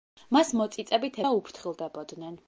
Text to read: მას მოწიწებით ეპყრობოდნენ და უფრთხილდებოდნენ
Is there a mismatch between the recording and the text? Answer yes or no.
yes